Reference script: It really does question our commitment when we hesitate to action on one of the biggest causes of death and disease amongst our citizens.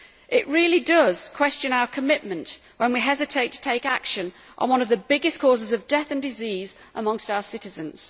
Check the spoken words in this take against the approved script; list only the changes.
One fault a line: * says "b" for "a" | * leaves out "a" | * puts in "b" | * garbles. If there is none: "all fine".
* puts in "take"